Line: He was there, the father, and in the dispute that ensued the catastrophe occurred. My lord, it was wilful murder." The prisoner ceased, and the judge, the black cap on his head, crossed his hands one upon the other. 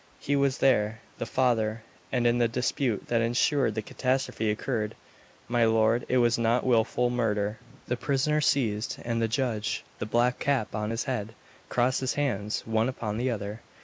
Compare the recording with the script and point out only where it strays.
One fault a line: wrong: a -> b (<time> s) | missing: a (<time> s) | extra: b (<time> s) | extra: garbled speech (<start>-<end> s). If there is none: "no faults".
extra: not (6.4 s)